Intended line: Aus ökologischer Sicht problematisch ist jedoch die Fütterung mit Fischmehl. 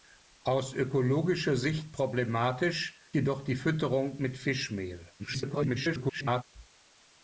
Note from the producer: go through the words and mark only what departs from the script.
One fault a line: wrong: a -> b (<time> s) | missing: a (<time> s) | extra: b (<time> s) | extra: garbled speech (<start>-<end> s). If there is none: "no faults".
missing: ist (3.0 s)
extra: garbled speech (5.2-6.4 s)